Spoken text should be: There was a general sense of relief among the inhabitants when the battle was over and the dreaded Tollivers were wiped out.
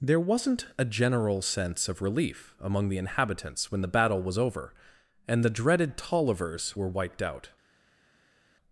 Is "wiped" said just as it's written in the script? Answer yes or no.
yes